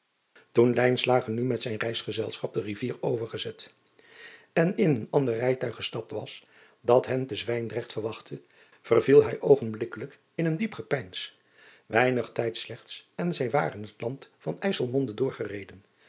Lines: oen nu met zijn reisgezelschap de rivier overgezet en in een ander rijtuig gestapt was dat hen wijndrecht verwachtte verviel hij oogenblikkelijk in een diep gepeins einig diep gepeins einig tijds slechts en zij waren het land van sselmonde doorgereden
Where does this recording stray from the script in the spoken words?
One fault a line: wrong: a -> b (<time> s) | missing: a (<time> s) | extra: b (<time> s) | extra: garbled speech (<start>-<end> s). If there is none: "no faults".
extra: te (7.3 s)
missing: diep gepeins einig (12.3 s)